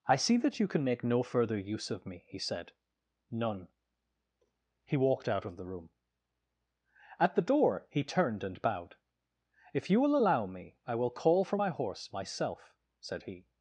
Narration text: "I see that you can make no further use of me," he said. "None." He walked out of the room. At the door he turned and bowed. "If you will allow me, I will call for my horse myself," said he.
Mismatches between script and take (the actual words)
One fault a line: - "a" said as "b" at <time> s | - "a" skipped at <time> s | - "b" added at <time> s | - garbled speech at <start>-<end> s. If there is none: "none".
none